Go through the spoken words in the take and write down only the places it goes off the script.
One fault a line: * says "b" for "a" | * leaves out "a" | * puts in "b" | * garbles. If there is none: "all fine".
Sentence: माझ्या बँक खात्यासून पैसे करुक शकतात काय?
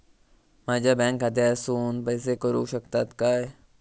all fine